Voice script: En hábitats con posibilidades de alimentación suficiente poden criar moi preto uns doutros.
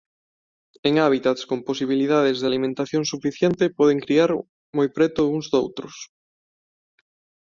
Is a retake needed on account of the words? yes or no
no